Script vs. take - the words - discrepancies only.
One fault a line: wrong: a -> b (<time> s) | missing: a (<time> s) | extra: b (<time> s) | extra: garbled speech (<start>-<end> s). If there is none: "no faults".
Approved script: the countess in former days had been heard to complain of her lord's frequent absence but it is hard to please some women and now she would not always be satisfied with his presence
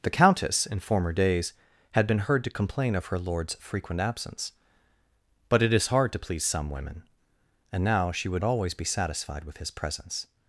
missing: not (8.4 s)